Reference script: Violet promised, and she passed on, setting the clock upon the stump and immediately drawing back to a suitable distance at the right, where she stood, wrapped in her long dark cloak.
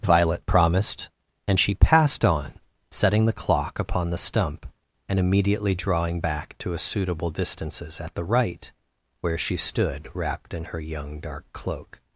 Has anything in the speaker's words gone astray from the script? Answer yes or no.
yes